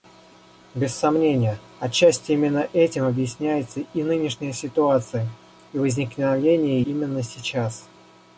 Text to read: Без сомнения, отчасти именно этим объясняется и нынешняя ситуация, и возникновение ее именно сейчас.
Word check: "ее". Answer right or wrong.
wrong